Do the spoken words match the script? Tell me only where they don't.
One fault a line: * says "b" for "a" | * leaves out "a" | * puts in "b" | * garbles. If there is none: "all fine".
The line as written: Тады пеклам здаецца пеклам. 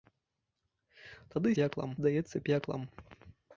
all fine